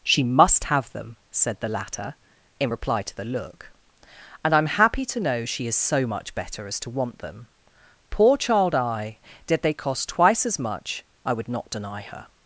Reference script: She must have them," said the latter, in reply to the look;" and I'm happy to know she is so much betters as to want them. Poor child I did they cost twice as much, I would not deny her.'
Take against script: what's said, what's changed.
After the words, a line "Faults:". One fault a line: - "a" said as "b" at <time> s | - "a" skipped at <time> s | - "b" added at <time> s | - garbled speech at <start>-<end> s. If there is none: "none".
She must have them," said the latter, in reply to the look;" and I'm happy to know she is so much better as to want them. Poor child I did they cost twice as much, I would not deny her.'
Faults:
- "betters" said as "better" at 6.3 s